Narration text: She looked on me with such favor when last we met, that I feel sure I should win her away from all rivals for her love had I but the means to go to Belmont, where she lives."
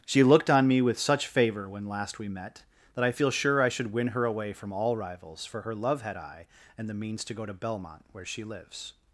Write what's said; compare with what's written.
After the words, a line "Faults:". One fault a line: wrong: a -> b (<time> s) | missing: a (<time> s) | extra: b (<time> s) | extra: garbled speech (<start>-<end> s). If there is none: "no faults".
She looked on me with such favor when last we met, that I feel sure I should win her away from all rivals for her love had I and the means to go to Belmont, where she lives."
Faults:
wrong: but -> and (6.8 s)